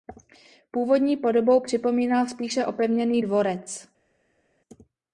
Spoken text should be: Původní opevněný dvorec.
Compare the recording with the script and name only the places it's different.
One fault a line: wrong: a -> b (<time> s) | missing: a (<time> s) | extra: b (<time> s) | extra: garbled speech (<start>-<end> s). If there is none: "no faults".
extra: podobou připomínal spíše (1.2 s)